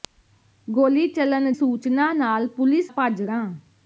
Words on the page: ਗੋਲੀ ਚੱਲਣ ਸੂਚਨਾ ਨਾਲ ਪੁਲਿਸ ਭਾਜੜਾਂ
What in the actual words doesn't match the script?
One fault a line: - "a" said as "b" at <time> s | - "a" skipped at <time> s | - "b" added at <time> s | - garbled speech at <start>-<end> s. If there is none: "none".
none